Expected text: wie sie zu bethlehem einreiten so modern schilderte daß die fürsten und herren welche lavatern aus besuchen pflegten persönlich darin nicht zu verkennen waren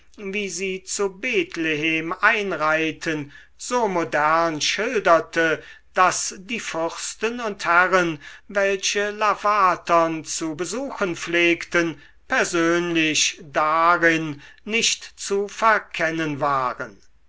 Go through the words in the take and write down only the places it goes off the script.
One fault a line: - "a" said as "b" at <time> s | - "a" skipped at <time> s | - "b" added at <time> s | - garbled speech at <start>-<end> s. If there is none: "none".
- "aus" said as "zu" at 10.2 s